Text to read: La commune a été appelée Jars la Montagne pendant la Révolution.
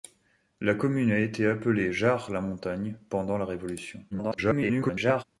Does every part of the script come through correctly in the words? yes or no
no